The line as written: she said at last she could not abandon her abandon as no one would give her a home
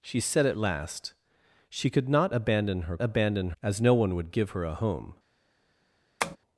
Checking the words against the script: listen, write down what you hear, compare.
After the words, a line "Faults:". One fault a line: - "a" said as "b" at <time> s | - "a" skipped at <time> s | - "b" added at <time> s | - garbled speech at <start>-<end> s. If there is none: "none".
she said at last she could not abandon her abandon as no one would give her a home
Faults:
none